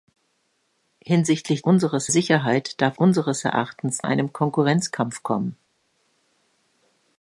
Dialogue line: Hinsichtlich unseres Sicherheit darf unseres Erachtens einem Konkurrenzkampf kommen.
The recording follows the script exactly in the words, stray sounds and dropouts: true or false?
true